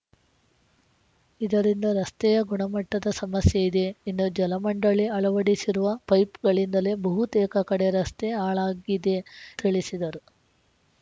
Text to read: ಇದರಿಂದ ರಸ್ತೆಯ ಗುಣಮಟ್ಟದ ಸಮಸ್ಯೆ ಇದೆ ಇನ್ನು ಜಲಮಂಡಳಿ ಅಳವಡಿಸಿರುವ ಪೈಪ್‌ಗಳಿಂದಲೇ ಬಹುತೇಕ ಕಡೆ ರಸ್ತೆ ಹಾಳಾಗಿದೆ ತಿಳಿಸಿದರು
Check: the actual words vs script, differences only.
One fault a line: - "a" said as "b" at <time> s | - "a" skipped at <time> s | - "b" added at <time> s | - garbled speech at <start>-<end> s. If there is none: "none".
none